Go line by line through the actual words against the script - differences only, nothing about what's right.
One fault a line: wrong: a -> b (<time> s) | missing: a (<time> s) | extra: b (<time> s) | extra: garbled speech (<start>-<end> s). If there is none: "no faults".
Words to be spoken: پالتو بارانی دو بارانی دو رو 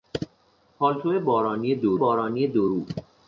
no faults